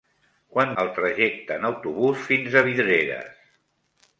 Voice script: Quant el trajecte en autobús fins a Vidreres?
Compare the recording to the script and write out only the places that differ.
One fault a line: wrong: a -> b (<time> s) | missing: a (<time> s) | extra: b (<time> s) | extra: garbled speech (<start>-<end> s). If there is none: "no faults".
no faults